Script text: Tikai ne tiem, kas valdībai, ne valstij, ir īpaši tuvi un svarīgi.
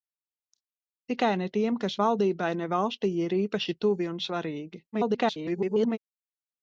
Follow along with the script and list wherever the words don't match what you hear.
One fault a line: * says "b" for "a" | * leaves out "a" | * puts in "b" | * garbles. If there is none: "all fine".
* garbles